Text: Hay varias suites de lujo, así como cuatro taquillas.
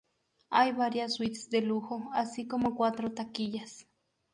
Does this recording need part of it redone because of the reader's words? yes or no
no